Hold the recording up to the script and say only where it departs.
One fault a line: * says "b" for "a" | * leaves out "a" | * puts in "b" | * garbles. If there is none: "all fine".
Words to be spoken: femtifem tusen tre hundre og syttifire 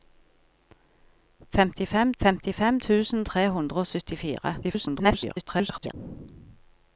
* puts in "femtifem"
* garbles